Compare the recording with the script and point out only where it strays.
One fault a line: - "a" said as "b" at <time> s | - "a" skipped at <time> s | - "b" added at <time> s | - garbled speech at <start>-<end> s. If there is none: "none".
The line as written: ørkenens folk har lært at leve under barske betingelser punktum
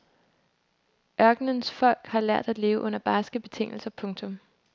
none